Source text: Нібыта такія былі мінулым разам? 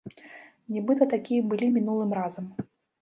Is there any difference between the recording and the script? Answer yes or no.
no